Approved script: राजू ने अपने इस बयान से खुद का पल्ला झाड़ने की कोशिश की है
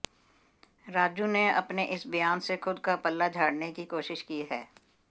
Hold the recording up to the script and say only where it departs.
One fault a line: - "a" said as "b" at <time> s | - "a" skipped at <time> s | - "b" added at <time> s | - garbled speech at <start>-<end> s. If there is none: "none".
none